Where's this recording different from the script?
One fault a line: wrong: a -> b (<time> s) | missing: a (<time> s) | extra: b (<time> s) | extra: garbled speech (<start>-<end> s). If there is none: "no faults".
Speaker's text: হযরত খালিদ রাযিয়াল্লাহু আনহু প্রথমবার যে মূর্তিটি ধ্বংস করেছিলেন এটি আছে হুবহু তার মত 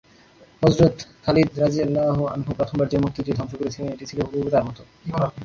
wrong: আছে -> ছিল (4.0 s)